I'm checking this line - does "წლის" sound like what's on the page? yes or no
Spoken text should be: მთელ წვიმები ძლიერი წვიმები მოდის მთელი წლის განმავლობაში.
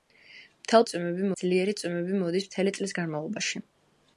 yes